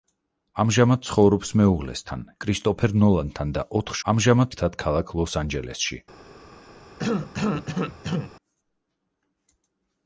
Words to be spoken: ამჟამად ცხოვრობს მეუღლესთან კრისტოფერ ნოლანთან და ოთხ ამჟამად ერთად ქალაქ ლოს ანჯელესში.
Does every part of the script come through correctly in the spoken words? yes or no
yes